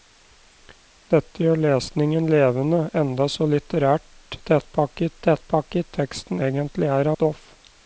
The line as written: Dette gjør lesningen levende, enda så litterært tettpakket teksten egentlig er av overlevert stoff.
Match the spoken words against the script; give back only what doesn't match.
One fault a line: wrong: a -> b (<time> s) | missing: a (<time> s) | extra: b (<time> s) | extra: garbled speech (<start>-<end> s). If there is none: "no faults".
extra: tettpakket (5.2 s)
missing: av overlevert (7.1 s)